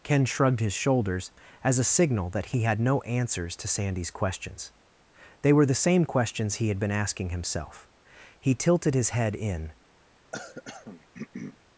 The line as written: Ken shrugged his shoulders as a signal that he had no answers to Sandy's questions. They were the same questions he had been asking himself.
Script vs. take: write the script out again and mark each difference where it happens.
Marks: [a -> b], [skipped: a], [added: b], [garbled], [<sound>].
Ken shrugged his shoulders as a signal that he had no answers to Sandy's questions. They were the same questions he had been asking himself. [added: He tilted his head in] [throat clearing]